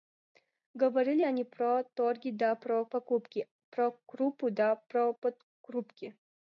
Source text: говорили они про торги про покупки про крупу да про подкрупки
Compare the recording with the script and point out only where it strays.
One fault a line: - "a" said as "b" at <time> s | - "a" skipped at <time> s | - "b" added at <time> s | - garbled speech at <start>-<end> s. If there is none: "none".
- "да" added at 2.3 s